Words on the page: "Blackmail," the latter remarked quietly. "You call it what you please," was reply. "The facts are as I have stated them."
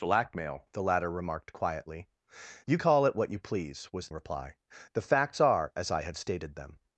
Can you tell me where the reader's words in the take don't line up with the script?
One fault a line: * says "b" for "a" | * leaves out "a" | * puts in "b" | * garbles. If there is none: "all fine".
all fine